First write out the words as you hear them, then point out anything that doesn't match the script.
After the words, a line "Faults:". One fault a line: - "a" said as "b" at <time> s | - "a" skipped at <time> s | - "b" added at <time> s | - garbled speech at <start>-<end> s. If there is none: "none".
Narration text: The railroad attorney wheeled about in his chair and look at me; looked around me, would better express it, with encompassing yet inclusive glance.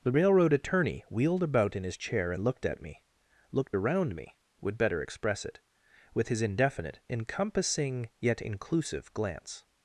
The railroad attorney wheeled about in his chair and looked at me; looked around me, would better express it, with his indefinite, encompassing yet inclusive glance.
Faults:
- "look" said as "looked" at 2.4 s
- "his indefinite" added at 6.3 s